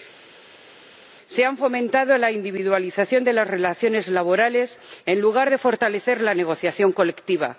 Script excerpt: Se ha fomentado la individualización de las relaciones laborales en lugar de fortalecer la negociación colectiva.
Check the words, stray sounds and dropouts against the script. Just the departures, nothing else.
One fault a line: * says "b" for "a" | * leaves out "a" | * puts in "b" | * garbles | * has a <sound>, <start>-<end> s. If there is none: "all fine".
all fine